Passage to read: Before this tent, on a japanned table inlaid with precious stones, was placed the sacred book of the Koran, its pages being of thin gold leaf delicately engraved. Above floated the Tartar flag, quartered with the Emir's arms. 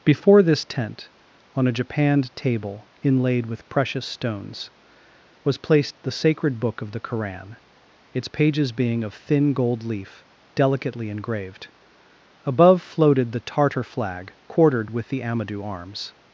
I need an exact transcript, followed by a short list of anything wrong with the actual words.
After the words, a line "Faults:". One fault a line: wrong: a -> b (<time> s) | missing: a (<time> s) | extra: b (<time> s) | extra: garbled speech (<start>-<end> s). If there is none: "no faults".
Before this tent, on a japanned table inlaid with precious stones, was placed the sacred book of the Koran, its pages being of thin gold leaf delicately engraved. Above floated the Tartar flag, quartered with the Amadou arms.
Faults:
wrong: Emir's -> Amadou (15.2 s)